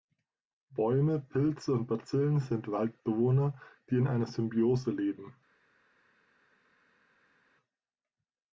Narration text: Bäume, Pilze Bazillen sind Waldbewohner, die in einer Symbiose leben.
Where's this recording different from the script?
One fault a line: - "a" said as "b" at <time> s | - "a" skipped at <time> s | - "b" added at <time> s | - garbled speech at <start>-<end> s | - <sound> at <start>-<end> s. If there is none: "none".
- "und" added at 1.7 s